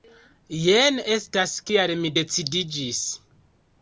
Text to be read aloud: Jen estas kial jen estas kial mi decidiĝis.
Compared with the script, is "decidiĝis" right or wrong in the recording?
right